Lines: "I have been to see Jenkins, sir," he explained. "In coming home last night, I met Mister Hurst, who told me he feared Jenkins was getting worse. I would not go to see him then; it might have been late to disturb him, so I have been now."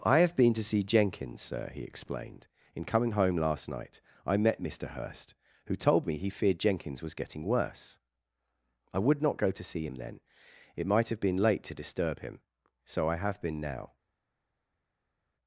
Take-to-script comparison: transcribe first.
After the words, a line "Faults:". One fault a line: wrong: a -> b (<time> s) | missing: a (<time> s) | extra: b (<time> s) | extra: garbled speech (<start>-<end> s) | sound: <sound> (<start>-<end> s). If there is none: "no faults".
"I have been to see Jenkins, sir," he explained. "In coming home last night, I met Mister Hurst, who told me he feared Jenkins was getting worse. I would not go to see him then; it might have been late to disturb him, so I have been now."
Faults:
no faults